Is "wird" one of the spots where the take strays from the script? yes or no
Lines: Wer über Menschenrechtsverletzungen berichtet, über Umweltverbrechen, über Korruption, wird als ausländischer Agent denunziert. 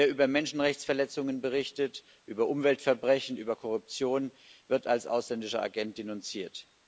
no